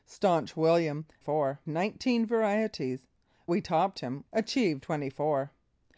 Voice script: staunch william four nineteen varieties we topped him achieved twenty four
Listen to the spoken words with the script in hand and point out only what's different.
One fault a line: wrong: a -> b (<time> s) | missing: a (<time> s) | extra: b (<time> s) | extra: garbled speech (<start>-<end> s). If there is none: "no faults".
no faults